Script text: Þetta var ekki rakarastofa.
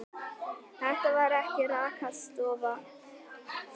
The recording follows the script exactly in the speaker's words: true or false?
true